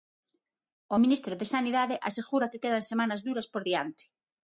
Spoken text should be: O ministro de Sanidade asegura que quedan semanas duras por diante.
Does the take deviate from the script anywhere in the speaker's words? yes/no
no